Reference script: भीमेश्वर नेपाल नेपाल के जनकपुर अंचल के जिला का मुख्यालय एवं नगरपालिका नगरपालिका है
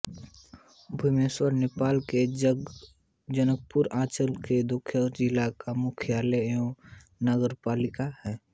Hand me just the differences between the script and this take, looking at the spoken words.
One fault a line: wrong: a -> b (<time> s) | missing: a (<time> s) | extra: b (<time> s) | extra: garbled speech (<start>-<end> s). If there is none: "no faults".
missing: नेपाल (2.0 s)
extra: दोलखा (4.7 s)
missing: नगरपालिका (8.1 s)